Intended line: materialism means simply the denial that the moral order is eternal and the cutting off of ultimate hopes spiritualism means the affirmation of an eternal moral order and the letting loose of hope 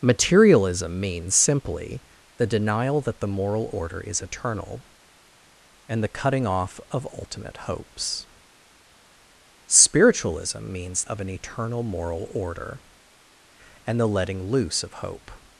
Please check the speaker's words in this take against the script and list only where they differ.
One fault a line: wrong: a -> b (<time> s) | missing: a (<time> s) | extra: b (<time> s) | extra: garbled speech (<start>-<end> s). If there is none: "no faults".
missing: the affirmation (11.0 s)